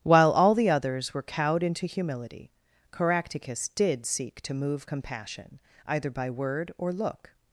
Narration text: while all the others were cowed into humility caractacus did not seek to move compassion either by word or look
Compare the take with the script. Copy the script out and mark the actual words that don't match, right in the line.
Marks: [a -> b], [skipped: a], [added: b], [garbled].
while all the others were cowed into humility caractacus did [skipped: not] seek to move compassion either by word or look